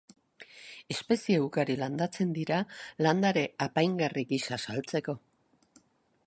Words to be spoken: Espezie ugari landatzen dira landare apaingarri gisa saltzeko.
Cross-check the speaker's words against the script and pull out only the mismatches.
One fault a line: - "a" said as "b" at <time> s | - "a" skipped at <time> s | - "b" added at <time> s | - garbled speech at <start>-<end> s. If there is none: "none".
none